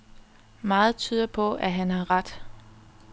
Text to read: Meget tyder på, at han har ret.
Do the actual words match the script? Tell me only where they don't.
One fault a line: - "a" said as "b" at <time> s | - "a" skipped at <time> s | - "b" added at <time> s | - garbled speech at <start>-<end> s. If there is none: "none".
none